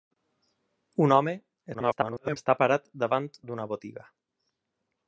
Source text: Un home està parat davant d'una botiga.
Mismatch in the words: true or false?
true